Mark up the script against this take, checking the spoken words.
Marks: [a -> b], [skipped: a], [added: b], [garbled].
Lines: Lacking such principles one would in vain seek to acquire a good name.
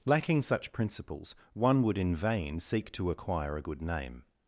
Lacking such principles one would in vain seek to acquire a good name.